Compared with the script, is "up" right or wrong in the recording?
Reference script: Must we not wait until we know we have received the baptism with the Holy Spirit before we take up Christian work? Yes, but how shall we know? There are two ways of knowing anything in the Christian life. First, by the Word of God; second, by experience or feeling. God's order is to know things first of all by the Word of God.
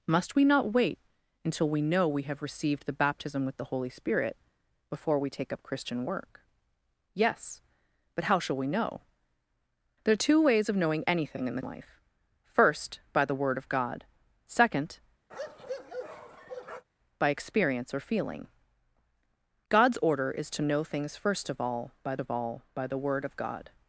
right